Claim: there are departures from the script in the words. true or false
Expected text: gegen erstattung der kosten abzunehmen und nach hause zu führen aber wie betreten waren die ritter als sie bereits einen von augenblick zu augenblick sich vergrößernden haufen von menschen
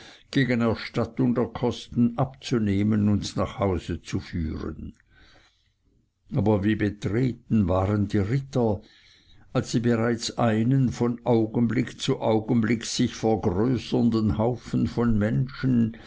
false